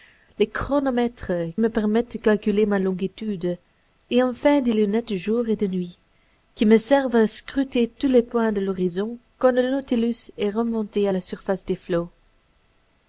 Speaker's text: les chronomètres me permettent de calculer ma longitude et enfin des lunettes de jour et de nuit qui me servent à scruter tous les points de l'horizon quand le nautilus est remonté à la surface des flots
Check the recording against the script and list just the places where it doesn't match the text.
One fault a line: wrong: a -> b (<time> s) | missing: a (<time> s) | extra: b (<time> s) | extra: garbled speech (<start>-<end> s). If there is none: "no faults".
no faults